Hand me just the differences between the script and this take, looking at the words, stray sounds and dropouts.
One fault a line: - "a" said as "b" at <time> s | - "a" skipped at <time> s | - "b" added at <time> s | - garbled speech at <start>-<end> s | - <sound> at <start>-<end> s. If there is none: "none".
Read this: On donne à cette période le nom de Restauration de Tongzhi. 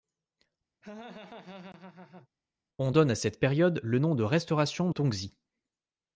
- laugh at 0.8-2.3 s
- "de" skipped at 4.9 s